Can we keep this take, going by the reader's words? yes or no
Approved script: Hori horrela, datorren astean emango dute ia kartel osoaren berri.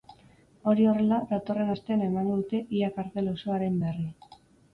yes